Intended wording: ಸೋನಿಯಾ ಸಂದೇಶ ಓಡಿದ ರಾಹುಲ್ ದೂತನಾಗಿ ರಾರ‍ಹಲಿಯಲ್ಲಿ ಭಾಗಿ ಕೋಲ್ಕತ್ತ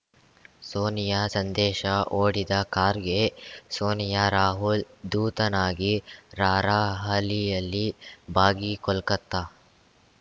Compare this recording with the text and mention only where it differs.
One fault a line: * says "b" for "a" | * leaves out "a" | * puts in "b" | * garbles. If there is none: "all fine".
* puts in "ಖಾರ್ಗೆ ಸೋನಿಯಾ"